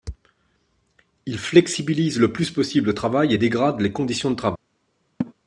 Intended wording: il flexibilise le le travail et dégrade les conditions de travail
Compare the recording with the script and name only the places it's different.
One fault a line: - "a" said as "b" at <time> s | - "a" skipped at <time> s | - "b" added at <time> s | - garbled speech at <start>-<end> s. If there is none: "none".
- "plus possible" added at 2.3 s